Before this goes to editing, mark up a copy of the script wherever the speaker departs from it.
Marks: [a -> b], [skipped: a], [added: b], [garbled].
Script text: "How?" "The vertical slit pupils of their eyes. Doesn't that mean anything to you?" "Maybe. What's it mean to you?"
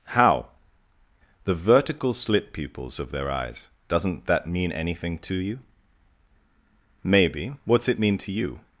"How?" "The vertical slit pupils of their eyes. Doesn't that mean anything to you?" "Maybe. What's it mean to you?"